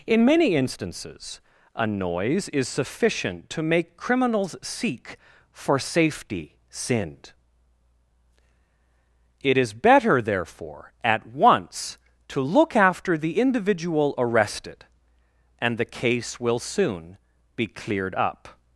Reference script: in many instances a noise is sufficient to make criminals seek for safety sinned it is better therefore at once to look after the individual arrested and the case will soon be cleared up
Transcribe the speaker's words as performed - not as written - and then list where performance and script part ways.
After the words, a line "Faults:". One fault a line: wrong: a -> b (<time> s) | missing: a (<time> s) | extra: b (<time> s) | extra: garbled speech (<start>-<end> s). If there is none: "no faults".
in many instances a noise is sufficient to make criminals seek for safety sinned it is better therefore at once to look after the individual arrested and the case will soon be cleared up
Faults:
no faults